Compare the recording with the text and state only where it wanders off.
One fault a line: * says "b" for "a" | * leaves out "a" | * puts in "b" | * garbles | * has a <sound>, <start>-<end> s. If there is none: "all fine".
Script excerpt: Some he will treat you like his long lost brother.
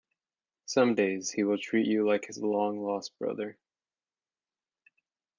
* puts in "days"